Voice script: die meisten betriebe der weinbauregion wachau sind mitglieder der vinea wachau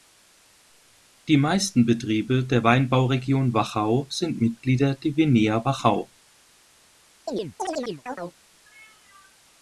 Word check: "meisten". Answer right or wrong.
right